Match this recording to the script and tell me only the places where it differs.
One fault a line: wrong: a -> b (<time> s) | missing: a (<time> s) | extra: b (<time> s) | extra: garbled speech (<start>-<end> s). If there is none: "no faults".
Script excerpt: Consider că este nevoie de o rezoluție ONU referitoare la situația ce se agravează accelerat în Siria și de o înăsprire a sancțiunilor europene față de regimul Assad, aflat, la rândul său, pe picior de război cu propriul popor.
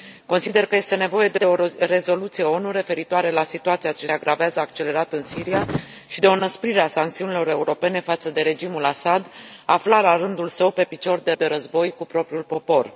extra: de (1.3 s)
missing: se (4.1 s)
extra: de (11.3 s)